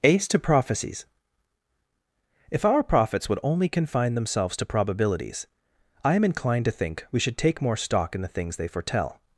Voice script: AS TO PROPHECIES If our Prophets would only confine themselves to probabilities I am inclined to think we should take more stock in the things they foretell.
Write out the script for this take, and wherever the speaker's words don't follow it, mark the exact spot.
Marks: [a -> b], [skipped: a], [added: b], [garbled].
[AS -> Ace] TO PROPHECIES If our Prophets would only confine themselves to probabilities I am inclined to think we should take more stock in the things they foretell.